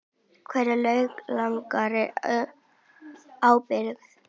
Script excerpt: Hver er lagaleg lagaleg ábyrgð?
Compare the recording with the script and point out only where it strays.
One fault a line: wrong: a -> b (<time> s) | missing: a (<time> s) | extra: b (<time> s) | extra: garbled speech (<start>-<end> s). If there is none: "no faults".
missing: lagaleg (2.1 s)